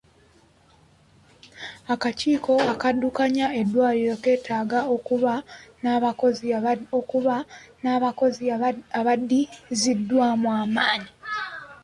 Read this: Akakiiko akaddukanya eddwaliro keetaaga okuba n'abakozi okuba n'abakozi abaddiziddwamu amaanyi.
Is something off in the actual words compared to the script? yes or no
no